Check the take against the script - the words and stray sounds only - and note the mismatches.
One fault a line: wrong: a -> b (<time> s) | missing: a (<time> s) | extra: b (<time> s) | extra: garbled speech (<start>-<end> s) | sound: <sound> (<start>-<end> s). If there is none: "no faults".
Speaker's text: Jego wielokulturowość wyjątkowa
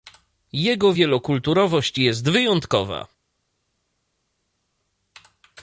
extra: jest (2.0 s)